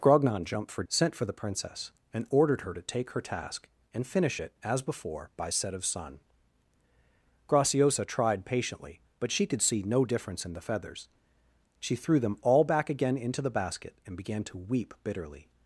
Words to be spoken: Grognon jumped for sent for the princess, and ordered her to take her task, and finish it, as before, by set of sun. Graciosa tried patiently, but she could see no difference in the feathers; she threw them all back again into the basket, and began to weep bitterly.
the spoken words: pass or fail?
pass